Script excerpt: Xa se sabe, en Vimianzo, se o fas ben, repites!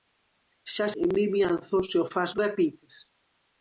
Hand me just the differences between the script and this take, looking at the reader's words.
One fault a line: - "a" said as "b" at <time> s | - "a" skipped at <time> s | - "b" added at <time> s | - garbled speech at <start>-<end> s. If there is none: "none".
- "se sabe" skipped at 0.9 s
- "ben" skipped at 2.3 s